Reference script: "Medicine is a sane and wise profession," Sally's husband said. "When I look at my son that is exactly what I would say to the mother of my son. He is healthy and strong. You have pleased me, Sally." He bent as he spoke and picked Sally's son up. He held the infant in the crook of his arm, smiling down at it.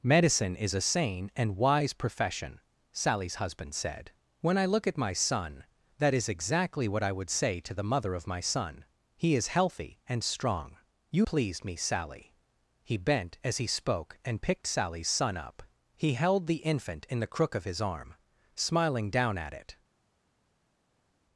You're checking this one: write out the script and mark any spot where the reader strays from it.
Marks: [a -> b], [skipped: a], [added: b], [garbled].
"Medicine is a sane and wise profession," Sally's husband said. "When I look at my son that is exactly what I would say to the mother of my son. He is healthy and strong. You [skipped: have] pleased me, Sally." He bent as he spoke and picked Sally's son up. He held the infant in the crook of his arm, smiling down at it.